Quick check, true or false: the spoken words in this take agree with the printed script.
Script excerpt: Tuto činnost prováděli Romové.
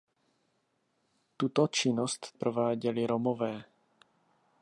true